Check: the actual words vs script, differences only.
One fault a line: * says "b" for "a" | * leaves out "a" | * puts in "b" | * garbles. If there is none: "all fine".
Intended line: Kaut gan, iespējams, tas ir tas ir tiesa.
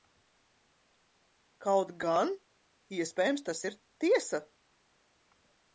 * leaves out "tas ir"